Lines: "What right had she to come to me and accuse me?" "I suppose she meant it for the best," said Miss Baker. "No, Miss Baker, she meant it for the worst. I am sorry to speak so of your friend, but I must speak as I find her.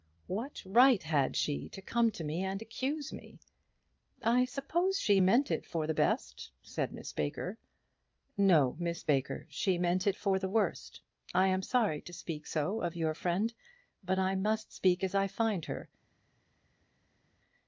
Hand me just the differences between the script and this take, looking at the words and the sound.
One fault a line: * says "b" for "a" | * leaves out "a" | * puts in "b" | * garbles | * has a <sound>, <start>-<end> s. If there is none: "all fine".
all fine